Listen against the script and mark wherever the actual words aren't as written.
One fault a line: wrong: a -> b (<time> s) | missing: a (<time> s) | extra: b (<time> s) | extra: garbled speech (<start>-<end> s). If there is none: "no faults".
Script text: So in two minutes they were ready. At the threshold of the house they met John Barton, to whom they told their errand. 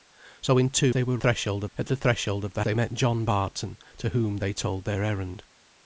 missing: minutes (0.9 s)
wrong: ready -> threshold (1.2 s)
missing: house (2.6 s)